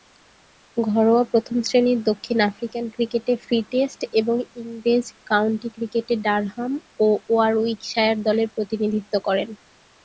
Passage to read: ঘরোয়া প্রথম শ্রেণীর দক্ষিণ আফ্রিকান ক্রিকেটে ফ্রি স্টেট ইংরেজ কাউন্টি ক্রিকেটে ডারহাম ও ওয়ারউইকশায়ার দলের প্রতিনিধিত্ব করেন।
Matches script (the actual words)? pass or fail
fail